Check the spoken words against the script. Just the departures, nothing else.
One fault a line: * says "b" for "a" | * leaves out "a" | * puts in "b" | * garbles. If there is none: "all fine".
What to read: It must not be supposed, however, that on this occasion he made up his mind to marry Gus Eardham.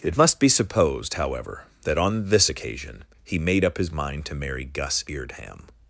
* leaves out "not"